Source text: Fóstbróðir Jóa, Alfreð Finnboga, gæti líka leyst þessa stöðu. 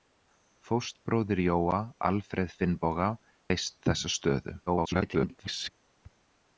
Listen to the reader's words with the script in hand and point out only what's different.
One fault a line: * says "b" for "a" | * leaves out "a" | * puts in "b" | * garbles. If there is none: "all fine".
* leaves out "gæti líka"
* garbles